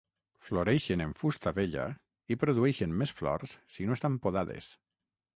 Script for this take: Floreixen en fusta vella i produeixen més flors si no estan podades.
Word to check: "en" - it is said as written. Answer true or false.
true